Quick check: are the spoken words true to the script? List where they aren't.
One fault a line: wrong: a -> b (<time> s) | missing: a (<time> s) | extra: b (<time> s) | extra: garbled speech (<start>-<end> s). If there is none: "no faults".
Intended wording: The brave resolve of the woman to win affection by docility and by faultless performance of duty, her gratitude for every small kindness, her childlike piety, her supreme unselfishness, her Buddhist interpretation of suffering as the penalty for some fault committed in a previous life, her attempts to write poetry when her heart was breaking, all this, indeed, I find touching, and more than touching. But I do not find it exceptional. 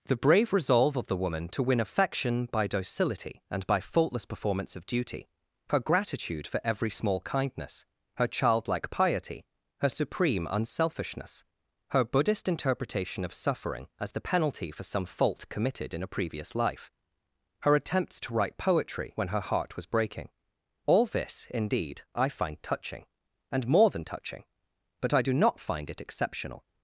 no faults